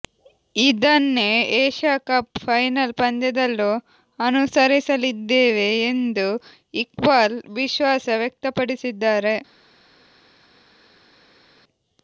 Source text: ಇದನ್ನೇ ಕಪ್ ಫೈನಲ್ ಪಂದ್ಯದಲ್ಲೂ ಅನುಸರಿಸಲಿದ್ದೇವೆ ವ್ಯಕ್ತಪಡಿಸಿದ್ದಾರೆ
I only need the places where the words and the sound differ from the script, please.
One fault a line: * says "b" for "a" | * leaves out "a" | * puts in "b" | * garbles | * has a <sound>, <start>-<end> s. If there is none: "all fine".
* puts in "ಏಷ್ಯಾ"
* puts in "ಎಂದು ಇಕ್ಬಾಲ್ ವಿಶ್ವಾಸ"